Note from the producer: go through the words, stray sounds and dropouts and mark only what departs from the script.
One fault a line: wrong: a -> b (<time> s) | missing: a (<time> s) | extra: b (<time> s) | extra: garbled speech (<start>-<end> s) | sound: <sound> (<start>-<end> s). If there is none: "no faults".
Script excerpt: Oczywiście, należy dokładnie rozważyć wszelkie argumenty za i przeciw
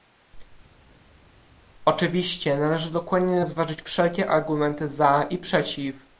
no faults